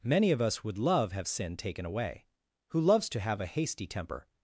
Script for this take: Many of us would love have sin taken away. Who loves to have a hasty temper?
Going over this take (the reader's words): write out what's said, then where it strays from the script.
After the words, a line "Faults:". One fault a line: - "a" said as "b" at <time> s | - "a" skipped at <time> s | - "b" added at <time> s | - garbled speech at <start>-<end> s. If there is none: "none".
Many of us would love have sin taken away. Who loves to have a hasty temper?
Faults:
none